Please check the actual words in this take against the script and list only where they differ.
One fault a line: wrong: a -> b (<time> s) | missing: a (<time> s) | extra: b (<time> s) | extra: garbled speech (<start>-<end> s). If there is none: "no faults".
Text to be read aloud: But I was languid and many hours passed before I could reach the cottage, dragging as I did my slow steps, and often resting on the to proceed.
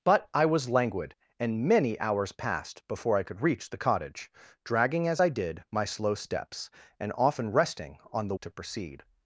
no faults